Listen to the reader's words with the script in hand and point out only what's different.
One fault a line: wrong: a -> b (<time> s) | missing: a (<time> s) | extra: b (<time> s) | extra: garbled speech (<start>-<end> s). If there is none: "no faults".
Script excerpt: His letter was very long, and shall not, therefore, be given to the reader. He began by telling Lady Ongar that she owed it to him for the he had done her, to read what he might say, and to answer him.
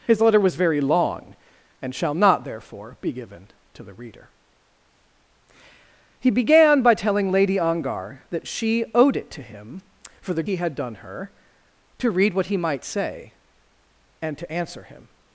no faults